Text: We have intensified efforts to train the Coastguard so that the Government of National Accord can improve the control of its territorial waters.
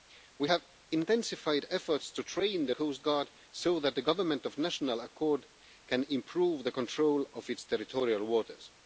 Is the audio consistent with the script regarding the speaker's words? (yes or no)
yes